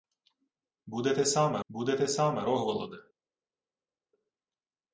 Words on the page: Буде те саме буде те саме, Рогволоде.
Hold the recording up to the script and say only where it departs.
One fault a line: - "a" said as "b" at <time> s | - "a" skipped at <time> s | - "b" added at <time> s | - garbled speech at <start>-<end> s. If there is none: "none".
none